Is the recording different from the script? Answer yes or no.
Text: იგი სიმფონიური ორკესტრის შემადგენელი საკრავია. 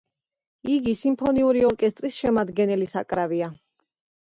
no